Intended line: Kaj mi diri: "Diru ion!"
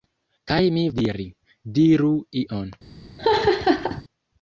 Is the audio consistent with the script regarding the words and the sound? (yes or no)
no